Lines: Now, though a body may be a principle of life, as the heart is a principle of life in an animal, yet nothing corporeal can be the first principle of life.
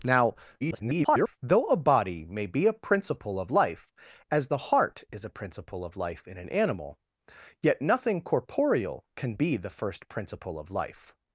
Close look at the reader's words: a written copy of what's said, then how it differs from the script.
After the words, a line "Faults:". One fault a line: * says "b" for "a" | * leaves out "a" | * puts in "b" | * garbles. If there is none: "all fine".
Now, [garbled] though a body may be a principle of life, as the heart is a principle of life in an animal, yet nothing corporeal can be the first principle of life.
Faults:
* garbles